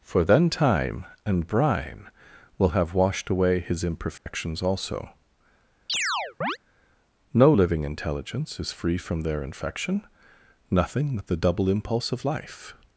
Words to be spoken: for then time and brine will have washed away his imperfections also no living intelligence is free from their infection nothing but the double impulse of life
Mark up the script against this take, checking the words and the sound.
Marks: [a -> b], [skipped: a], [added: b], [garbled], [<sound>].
for then time and brine will have washed away his imperfections [dropout] also [chirp] no living intelligence is free from their infection nothing but the double impulse of life